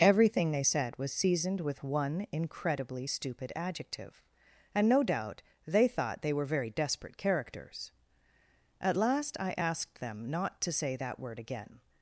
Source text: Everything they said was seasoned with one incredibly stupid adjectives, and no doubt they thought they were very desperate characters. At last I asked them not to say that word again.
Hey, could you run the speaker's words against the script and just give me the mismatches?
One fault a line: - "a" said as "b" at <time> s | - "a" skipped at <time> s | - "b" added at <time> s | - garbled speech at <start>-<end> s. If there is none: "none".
- "adjectives" said as "adjective" at 3.6 s